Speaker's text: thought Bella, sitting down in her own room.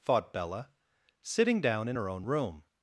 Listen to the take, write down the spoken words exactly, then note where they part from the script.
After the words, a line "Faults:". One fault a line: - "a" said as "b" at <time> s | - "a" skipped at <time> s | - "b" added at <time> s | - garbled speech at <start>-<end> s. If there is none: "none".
thought Bella, sitting down in her own room.
Faults:
none